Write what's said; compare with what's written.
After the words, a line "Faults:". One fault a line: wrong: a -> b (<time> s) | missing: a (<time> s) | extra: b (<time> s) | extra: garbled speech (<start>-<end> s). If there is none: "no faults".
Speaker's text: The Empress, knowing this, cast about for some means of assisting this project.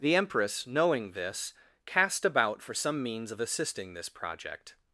The Empress, knowing this, cast about for some means of assisting this project.
Faults:
no faults